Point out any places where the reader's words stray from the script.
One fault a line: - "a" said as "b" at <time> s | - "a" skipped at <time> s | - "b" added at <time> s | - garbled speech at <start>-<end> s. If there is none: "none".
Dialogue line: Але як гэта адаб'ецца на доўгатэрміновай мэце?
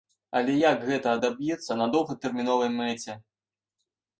none